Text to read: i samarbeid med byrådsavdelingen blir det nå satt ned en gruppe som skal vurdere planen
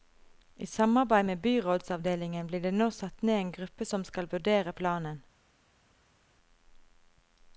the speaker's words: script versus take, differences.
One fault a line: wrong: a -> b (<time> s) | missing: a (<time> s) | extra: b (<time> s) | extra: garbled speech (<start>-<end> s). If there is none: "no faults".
no faults